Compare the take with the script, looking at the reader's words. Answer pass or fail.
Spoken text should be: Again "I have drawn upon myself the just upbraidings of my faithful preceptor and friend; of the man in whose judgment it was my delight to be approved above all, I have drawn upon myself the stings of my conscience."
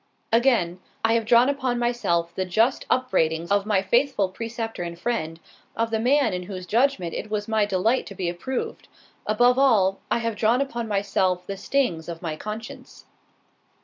pass